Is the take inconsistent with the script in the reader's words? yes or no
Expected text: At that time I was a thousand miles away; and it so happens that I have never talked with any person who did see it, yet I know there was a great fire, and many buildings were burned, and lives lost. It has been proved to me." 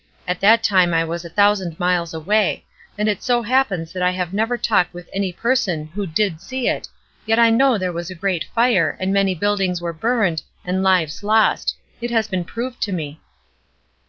no